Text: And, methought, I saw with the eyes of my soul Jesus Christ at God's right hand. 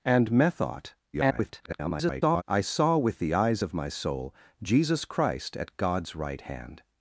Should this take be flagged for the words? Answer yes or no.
yes